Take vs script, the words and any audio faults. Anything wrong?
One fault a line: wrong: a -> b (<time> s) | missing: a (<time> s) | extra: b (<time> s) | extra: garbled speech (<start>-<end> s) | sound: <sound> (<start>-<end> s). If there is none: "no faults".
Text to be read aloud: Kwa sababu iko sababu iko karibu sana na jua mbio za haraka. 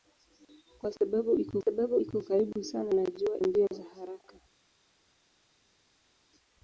no faults